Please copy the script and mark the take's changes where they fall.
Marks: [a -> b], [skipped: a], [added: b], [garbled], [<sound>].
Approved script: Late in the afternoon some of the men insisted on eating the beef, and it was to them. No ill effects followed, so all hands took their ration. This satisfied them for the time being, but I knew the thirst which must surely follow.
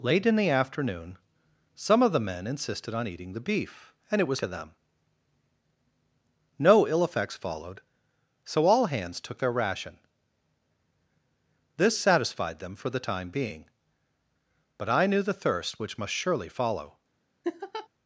Late in the afternoon some of the men insisted on eating the beef, and it was to them. No ill effects followed, so all hands took their ration. This satisfied them for the time being, but I knew the thirst which must surely follow. [laugh]